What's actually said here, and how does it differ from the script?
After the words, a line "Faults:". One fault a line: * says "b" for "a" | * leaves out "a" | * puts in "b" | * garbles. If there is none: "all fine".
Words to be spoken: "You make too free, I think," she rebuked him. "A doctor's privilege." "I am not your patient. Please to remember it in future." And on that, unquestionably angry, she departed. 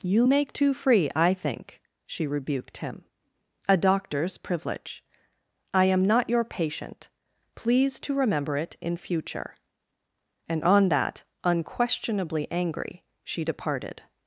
"You make too free, I think," she rebuked him. "A doctor's privilege." "I am not your patient. Please to remember it in future." And on that, unquestionably angry, she departed.
Faults:
all fine